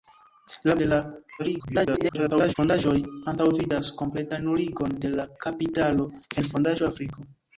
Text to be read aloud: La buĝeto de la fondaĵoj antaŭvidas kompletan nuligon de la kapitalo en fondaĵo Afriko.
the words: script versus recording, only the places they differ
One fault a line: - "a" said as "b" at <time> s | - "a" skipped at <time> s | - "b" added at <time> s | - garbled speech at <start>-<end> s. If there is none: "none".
- "buĝeto" skipped at 0.8 s
- garbled speech at 1.4-2.5 s